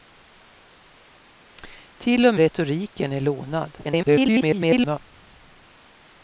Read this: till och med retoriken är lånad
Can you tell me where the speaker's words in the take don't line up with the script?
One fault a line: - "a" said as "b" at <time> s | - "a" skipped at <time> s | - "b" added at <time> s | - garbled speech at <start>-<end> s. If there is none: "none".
- "med" skipped at 2.4 s
- garbled speech at 3.8-5.0 s